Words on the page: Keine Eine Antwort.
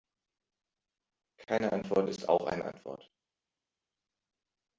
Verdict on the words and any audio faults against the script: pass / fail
fail